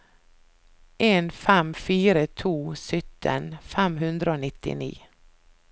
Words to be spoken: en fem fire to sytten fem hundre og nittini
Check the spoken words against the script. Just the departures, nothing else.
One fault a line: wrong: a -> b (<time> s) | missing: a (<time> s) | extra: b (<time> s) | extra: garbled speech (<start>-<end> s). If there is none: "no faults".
no faults